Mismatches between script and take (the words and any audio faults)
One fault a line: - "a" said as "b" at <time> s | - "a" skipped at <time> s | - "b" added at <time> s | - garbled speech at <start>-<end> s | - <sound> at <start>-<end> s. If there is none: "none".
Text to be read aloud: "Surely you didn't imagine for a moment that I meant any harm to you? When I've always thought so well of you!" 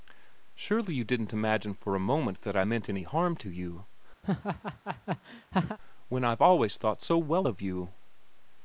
- laugh at 4.2-5.8 s